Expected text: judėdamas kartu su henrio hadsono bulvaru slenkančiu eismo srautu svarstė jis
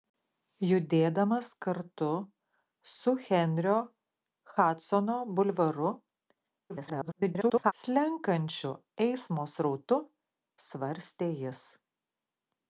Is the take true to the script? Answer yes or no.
no